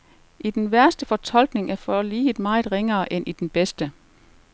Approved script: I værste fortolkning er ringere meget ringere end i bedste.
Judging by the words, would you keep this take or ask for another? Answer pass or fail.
fail